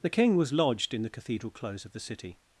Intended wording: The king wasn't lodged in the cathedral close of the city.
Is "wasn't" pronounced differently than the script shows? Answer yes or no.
yes